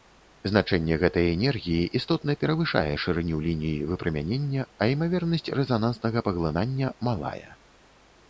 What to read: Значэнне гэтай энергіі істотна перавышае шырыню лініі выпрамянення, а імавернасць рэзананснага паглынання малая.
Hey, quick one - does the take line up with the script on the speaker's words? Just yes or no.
yes